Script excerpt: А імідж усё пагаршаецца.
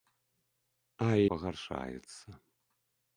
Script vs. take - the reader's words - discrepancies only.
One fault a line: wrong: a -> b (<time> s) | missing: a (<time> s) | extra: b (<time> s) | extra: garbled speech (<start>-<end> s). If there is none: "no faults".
missing: імідж усё (1.1 s)